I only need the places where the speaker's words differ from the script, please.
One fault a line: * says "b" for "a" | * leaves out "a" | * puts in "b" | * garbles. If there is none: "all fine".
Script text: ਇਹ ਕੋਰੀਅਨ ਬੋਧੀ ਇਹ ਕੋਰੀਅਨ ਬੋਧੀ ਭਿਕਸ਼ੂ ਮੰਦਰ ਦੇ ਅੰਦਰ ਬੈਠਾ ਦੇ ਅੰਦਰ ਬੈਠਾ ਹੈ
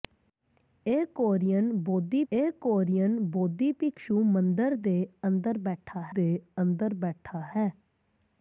all fine